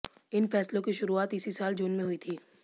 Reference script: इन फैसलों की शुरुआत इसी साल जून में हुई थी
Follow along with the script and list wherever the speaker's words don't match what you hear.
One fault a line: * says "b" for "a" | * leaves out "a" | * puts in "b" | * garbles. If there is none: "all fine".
all fine